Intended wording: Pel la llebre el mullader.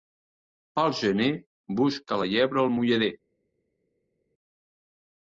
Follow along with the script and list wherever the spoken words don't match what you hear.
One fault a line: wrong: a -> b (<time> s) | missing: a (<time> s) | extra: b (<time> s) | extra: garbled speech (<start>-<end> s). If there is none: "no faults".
extra: gener busca (1.0 s)